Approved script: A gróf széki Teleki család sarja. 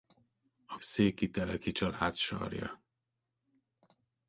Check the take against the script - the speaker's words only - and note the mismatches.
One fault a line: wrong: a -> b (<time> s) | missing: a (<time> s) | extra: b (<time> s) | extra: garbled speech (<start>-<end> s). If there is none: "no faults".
missing: gróf (0.8 s)